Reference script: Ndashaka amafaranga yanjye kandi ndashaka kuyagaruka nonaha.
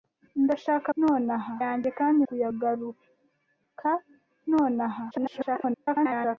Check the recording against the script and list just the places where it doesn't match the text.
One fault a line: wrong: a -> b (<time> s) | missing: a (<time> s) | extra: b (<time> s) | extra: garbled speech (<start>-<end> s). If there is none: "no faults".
wrong: amafaranga -> nonaha (1.0 s)
missing: ndashaka (2.2 s)
extra: garbled speech (5.1-6.4 s)